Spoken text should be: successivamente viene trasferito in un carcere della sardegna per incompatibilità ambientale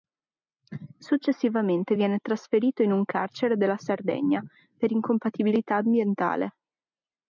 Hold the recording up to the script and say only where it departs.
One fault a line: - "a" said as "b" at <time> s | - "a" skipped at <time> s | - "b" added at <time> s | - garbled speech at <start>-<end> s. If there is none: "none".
none